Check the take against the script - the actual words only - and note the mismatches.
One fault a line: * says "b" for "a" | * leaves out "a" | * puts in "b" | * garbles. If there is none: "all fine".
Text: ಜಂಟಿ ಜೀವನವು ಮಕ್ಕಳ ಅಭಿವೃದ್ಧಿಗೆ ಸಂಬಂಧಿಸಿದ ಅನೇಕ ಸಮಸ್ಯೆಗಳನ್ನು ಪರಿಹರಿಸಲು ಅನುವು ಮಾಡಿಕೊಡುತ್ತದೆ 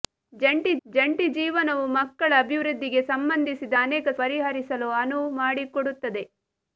* puts in "ಜಂಟಿ"
* leaves out "ಸಮಸ್ಯೆಗಳನ್ನು"